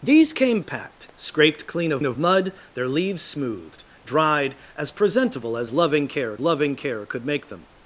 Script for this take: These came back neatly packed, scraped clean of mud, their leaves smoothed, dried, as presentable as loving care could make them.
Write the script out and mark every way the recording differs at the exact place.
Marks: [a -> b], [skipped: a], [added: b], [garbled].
These came [skipped: back neatly] packed, scraped clean of [added: of] mud, their leaves smoothed, dried, as presentable as loving care [added: loving care] could make them.